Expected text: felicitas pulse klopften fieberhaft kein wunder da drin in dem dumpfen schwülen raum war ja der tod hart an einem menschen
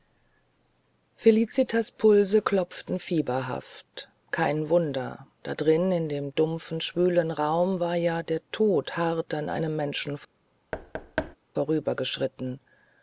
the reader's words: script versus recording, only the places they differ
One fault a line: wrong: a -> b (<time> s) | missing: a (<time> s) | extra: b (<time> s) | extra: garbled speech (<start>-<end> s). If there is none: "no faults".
no faults